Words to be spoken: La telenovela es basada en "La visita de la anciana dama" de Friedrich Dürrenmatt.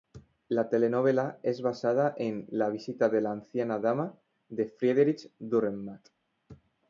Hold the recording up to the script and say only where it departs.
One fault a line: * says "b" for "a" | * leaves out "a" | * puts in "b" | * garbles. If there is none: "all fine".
all fine